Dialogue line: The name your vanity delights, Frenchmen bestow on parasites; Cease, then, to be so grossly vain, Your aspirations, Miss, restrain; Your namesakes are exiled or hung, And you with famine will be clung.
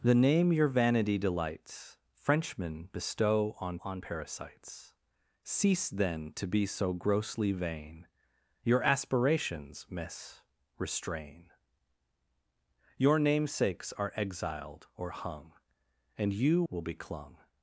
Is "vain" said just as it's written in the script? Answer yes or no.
yes